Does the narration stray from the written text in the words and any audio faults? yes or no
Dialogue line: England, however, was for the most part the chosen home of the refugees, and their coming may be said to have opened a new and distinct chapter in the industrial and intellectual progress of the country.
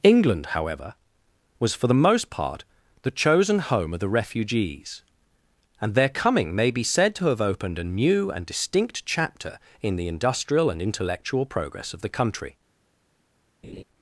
yes